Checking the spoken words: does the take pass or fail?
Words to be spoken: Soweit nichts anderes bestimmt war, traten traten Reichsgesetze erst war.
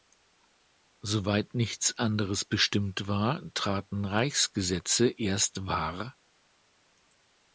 fail